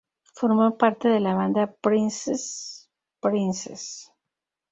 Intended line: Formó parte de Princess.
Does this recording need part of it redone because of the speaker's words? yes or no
yes